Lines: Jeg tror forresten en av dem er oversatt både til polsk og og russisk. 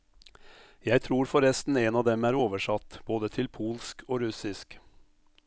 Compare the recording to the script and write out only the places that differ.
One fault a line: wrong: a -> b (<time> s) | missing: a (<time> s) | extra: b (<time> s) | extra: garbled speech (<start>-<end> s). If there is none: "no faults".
missing: og (4.2 s)